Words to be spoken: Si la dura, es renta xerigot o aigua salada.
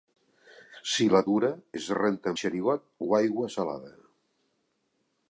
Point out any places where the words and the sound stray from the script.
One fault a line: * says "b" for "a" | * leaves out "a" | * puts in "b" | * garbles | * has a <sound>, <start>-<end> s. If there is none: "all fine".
all fine